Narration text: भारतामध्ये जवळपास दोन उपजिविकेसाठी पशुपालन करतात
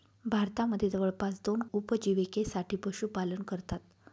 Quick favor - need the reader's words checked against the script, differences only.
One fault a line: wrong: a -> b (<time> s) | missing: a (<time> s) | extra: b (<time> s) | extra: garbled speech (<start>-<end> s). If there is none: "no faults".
no faults